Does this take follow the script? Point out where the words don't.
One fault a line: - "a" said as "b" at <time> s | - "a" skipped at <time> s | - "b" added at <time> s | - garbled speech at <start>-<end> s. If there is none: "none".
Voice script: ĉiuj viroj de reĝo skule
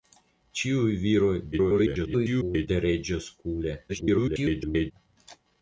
- garbled speech at 1.5-2.7 s
- garbled speech at 3.9-4.9 s